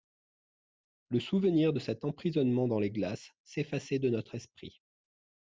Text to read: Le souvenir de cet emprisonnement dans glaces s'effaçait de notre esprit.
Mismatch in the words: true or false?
true